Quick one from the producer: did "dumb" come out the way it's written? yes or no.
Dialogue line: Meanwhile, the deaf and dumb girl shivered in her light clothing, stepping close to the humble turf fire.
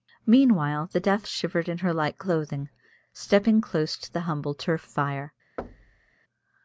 no